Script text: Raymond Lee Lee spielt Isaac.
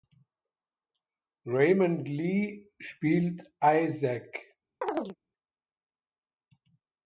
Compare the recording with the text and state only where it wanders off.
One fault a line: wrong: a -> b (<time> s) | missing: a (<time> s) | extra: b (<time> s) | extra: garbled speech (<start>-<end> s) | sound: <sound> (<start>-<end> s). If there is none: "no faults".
missing: Lee (2.7 s)
sound: chirp (4.8-5.2 s)